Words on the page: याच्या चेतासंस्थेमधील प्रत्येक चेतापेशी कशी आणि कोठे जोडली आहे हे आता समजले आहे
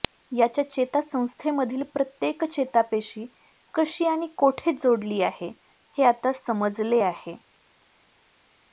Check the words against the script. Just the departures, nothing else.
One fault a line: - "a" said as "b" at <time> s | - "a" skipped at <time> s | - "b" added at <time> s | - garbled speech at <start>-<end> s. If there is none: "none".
none